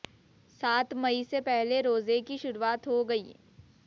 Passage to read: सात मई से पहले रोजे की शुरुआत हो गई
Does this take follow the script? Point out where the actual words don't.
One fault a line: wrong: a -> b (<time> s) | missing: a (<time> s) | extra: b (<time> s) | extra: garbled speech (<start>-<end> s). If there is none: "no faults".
no faults